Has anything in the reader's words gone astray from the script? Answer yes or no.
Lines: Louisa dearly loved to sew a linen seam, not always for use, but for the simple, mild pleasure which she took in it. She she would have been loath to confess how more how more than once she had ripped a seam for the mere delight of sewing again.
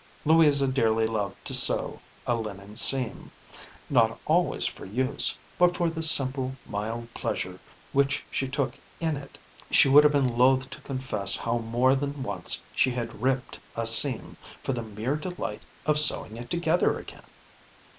yes